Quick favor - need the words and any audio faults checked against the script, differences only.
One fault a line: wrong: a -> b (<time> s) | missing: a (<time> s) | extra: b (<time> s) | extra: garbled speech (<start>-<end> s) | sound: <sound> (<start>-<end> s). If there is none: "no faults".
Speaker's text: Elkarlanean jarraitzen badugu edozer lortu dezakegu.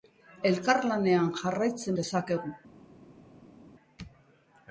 missing: badugu edozer lortu (2.0 s)